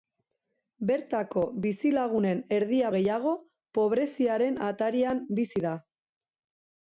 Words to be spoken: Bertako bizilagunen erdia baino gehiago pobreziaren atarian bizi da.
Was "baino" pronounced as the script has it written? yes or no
no